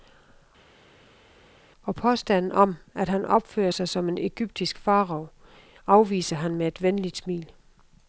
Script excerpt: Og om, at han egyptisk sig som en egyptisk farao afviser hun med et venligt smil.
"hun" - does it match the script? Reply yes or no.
no